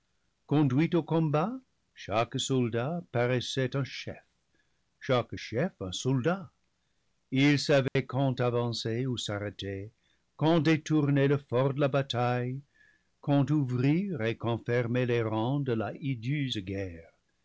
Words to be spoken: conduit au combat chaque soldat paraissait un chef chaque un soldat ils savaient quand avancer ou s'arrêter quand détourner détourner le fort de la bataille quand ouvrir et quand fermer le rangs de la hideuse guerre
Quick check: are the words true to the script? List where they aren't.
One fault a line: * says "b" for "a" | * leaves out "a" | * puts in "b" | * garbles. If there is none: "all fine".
* puts in "chef"
* leaves out "détourner"
* says "les" for "le"